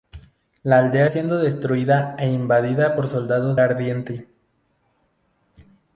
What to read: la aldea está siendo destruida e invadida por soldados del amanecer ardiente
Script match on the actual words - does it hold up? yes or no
no